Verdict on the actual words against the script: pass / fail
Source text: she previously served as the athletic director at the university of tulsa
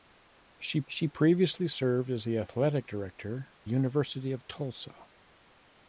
fail